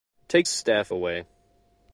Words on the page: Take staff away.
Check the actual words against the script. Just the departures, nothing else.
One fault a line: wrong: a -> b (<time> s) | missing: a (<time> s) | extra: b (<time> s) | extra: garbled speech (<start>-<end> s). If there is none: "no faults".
no faults